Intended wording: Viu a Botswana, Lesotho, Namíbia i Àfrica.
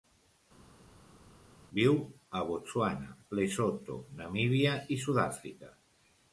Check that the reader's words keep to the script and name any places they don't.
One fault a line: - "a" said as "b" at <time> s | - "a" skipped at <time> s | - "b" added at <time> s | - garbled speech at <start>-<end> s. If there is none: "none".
- "Sud" added at 5.1 s